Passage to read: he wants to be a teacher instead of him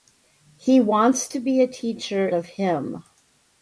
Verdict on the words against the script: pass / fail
fail